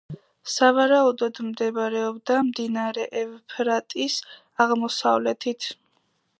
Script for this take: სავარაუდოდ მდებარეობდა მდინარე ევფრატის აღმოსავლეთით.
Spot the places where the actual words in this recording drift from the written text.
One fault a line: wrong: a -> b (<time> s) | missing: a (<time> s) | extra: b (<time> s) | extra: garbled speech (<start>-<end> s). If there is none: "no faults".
no faults